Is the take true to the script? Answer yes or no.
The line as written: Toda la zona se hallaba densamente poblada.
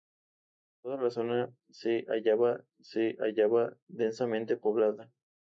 no